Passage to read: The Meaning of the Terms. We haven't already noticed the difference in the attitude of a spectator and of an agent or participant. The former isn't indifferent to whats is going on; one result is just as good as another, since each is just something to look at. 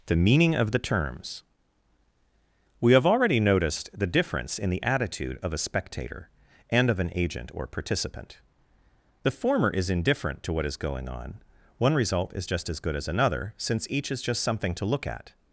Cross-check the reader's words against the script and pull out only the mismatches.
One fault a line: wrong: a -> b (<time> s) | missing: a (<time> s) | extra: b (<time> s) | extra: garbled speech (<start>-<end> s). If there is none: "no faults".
wrong: haven't -> have (2.9 s)
wrong: isn't -> is (9.7 s)
wrong: whats -> what (10.5 s)